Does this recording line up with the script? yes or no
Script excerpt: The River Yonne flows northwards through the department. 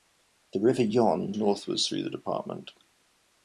no